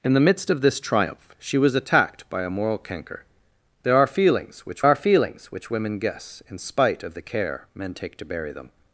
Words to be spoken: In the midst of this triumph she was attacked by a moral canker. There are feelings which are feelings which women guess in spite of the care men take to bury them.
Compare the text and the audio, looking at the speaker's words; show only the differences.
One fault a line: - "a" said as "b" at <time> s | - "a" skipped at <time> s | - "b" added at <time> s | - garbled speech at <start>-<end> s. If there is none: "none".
none